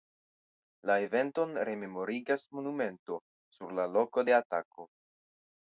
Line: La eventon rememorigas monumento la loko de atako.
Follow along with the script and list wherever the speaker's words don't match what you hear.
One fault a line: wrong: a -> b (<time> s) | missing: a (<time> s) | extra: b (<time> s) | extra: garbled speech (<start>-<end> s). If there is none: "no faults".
extra: sur (3.6 s)